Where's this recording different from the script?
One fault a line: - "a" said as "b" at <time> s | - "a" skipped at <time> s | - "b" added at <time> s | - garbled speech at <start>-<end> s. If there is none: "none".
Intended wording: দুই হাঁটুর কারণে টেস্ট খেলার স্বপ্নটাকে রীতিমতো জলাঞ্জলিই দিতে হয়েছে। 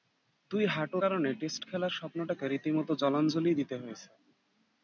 none